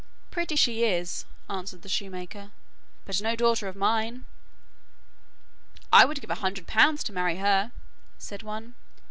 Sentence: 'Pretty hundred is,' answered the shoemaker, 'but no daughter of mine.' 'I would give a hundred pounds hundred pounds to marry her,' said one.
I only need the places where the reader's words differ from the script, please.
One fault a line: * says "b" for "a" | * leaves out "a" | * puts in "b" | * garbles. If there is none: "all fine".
* says "she" for "hundred"
* leaves out "hundred pounds"